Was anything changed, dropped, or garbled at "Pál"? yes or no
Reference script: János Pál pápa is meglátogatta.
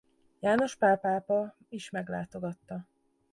no